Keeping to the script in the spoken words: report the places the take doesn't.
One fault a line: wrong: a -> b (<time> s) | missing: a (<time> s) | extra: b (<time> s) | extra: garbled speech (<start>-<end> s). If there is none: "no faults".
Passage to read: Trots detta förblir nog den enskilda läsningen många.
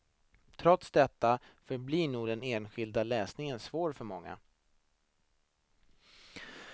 extra: svår för (3.6 s)